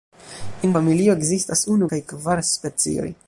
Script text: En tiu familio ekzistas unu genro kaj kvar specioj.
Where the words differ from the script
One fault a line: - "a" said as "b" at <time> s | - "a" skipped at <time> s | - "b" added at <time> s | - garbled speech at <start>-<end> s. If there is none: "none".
- "tiu" skipped at 0.7 s
- "genro" skipped at 1.9 s